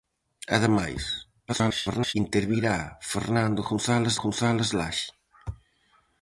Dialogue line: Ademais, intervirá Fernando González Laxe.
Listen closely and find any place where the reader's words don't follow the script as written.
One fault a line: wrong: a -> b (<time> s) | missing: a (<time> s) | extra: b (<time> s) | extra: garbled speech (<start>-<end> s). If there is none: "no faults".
extra: garbled speech (1.5-2.1 s)
extra: González (4.2 s)